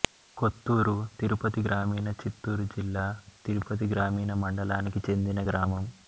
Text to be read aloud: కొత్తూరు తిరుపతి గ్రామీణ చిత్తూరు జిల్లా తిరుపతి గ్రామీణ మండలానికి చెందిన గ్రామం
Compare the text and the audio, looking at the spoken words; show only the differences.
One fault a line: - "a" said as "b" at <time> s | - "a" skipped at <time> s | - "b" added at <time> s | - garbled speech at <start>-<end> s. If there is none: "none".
none